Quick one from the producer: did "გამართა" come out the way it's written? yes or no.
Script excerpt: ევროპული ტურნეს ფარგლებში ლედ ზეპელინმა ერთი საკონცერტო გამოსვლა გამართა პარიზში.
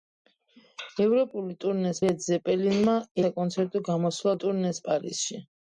no